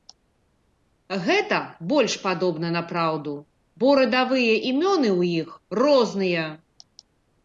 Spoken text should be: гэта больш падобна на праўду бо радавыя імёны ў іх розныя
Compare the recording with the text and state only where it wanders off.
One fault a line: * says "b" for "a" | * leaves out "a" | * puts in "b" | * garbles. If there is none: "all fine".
all fine